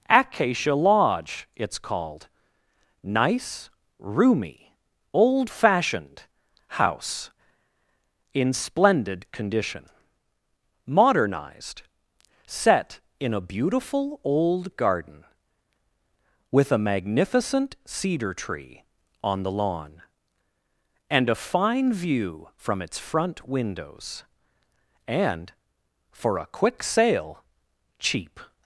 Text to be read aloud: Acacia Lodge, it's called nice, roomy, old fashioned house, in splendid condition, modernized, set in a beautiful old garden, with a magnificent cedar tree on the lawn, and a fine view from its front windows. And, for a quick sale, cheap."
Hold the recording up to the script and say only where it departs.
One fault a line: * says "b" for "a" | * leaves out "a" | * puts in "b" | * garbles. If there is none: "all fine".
all fine